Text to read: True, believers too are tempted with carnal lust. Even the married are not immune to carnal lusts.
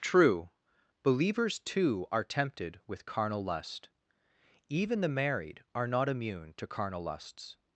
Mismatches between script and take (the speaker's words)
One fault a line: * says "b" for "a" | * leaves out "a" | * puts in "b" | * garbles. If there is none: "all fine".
all fine